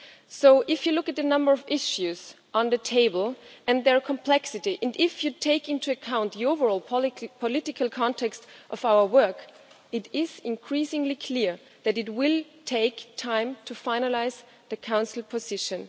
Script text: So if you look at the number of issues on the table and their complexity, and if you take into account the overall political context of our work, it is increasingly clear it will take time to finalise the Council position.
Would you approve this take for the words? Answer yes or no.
no